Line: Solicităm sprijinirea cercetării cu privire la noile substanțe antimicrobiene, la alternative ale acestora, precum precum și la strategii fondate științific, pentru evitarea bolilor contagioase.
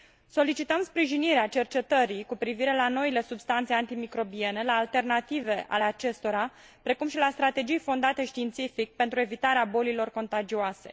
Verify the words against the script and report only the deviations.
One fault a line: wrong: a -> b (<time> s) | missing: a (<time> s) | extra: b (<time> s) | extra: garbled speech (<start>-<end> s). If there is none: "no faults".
missing: precum (7.1 s)